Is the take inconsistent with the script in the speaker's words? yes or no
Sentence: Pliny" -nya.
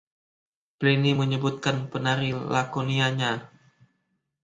yes